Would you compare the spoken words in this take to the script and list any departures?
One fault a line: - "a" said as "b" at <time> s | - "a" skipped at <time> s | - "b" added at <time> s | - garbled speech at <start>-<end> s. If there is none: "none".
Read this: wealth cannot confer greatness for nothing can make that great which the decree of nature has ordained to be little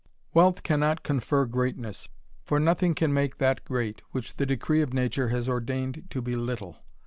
none